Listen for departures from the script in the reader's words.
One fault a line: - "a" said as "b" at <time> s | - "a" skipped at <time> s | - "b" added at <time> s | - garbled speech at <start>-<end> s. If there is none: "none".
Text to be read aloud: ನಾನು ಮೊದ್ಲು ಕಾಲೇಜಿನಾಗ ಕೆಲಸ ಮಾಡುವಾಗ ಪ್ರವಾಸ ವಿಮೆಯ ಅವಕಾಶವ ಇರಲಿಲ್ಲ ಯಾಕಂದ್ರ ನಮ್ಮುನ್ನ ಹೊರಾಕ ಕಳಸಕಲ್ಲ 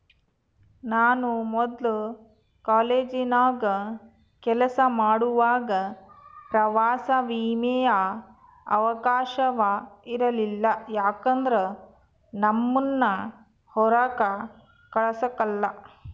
none